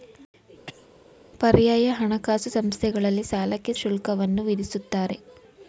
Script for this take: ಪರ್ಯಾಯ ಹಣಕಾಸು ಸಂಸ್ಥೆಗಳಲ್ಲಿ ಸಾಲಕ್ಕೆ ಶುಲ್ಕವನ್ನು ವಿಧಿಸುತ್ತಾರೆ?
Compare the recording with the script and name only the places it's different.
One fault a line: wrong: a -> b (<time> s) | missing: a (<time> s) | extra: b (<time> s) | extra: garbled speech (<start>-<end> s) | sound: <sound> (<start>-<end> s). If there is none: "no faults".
sound: cough (0.7-0.9 s)